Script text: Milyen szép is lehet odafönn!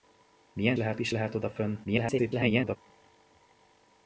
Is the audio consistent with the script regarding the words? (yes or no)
no